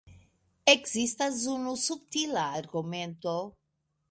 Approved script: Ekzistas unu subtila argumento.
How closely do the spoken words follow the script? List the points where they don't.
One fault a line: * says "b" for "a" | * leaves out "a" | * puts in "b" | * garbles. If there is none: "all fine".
all fine